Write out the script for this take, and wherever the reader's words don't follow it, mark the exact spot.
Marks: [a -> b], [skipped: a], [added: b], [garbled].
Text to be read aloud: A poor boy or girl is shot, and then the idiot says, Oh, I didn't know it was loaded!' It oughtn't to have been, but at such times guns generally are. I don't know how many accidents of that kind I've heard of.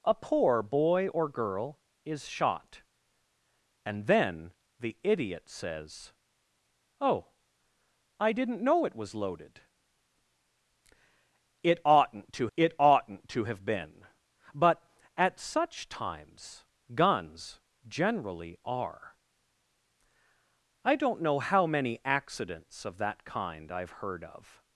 A poor boy or girl is shot, and then the idiot says, Oh, I didn't know it was loaded!' It oughtn't to [added: it oughtn't to] have been, but at such times guns generally are. I don't know how many accidents of that kind I've heard of.